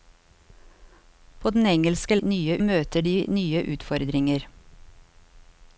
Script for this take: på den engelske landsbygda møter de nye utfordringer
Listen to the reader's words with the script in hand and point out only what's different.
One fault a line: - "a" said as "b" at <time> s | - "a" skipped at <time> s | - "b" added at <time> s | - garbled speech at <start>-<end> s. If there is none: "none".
- "landsbygda" said as "nye" at 2.2 s